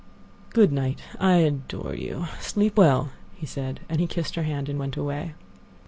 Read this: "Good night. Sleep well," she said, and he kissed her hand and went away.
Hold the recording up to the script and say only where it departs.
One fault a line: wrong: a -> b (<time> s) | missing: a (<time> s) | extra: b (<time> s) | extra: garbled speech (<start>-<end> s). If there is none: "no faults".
extra: I adore you (1.2 s)
wrong: she -> he (3.4 s)